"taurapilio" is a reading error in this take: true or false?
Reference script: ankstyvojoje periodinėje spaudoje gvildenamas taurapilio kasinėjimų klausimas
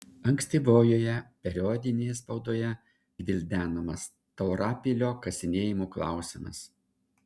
false